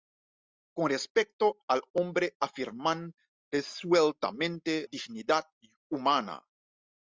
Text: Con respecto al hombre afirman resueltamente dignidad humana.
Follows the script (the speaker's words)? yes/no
yes